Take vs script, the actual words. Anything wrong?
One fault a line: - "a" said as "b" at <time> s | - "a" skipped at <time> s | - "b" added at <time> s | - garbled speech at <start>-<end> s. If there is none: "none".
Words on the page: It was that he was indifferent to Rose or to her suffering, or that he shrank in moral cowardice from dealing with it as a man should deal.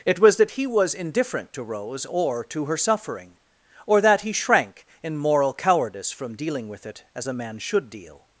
none